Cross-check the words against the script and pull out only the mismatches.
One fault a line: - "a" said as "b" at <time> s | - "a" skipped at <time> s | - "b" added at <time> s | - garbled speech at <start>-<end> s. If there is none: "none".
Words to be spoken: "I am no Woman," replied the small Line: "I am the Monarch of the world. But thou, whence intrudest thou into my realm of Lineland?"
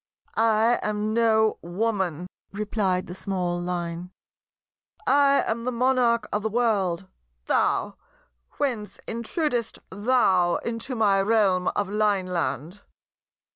- "But" skipped at 7.0 s